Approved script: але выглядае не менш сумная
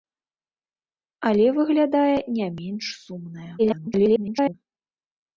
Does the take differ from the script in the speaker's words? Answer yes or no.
yes